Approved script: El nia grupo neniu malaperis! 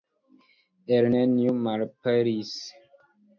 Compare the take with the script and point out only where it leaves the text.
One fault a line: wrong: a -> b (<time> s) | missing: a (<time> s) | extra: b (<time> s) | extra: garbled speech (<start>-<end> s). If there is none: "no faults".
missing: nia grupo (1.1 s)